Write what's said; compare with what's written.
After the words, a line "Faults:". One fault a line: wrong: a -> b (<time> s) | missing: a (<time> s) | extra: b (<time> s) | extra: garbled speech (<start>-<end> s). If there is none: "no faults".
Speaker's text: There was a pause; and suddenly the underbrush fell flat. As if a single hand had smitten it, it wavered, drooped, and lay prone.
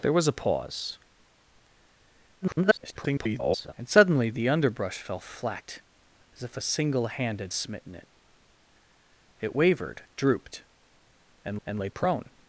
There was a pause; [garbled] and suddenly the underbrush fell flat. As if a single hand had smitten it, it wavered, drooped, and and lay prone.
Faults:
extra: garbled speech (2.4-3.7 s)
extra: and (11.7 s)